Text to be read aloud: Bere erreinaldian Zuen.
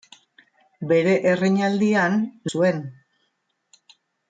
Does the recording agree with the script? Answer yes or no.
yes